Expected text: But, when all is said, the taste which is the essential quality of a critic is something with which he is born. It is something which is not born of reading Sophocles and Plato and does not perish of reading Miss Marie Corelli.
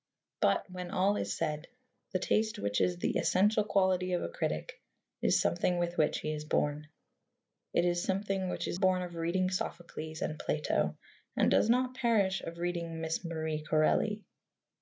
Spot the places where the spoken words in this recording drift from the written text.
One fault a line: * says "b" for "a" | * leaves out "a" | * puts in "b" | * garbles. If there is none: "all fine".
* leaves out "not"